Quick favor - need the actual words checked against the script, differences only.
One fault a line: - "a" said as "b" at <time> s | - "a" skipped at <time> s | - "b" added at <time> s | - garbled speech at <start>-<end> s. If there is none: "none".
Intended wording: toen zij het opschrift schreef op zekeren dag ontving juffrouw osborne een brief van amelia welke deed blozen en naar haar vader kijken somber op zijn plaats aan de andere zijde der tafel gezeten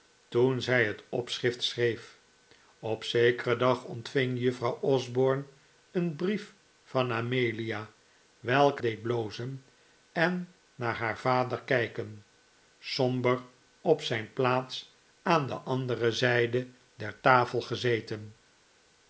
none